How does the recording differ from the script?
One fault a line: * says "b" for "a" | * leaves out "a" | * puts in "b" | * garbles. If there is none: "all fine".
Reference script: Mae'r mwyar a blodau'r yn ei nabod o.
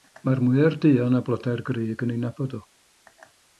* puts in "duon"
* puts in "grug"